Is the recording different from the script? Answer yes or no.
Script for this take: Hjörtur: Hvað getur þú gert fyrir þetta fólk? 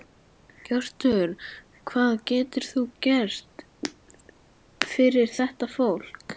no